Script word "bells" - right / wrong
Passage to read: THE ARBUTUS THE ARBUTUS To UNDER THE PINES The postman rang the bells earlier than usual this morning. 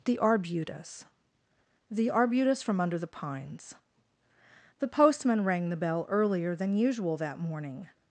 wrong